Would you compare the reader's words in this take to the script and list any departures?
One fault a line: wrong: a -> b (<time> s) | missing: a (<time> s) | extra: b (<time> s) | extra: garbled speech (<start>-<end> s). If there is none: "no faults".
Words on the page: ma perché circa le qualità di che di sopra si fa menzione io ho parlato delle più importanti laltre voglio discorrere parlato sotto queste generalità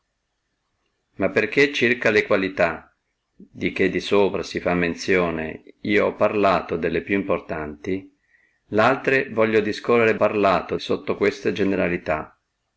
no faults